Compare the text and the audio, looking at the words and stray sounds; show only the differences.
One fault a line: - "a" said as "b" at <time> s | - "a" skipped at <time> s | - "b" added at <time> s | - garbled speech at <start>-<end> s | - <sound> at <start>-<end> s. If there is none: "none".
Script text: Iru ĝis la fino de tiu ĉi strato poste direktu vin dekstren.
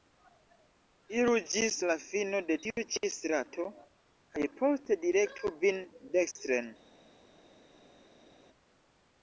- "kaj" added at 4.4 s